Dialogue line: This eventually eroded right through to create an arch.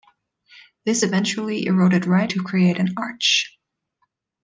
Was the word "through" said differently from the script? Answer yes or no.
yes